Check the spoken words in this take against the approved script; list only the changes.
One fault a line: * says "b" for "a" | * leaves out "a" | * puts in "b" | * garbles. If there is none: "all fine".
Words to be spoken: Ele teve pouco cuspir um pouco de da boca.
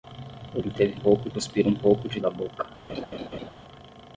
all fine